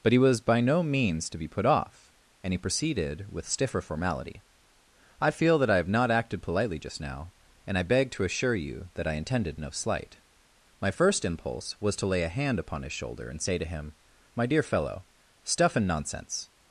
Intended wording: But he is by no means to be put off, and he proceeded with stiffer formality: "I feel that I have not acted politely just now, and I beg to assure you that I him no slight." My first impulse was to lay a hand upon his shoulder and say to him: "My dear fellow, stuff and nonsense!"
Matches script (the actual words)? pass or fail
fail